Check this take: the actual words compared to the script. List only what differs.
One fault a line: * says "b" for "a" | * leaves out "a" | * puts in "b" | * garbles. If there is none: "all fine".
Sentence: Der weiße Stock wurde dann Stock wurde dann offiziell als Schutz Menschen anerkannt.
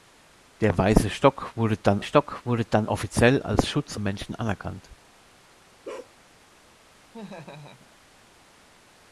all fine